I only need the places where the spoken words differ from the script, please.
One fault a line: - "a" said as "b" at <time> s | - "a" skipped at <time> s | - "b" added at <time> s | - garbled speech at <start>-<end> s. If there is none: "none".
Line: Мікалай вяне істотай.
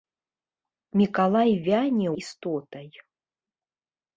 none